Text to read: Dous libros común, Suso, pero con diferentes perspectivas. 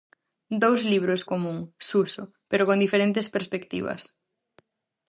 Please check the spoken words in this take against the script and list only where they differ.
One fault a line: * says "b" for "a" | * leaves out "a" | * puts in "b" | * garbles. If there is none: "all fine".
all fine